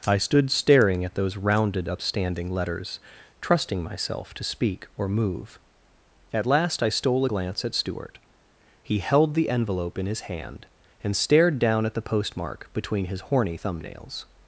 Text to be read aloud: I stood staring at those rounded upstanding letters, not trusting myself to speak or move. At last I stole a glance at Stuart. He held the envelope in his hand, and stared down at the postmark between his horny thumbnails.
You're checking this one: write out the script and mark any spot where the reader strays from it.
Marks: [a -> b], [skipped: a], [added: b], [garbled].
I stood staring at those rounded upstanding letters, [skipped: not] trusting myself to speak or move. At last I stole a glance at Stuart. He held the envelope in his hand, and stared down at the postmark between his horny thumbnails.